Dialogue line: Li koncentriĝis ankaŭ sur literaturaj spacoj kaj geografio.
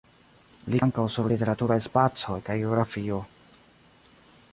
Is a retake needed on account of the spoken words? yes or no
yes